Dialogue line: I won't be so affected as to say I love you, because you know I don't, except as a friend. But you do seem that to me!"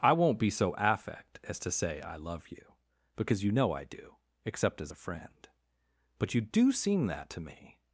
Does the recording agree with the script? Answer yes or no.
no